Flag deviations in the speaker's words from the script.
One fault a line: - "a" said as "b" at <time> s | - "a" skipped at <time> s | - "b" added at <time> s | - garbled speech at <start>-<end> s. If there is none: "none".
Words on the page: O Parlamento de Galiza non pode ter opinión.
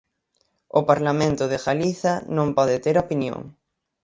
none